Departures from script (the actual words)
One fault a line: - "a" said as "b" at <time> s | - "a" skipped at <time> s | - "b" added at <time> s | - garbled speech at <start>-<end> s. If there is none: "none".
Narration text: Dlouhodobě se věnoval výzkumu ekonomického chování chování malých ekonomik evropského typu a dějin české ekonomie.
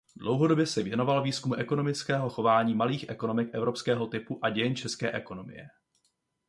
- "chování" skipped at 2.7 s